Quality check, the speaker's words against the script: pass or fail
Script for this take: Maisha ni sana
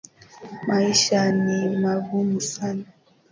fail